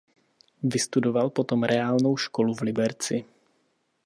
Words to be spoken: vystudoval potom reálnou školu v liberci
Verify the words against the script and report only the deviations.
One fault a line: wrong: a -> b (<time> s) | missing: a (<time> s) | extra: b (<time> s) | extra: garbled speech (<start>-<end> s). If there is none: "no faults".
no faults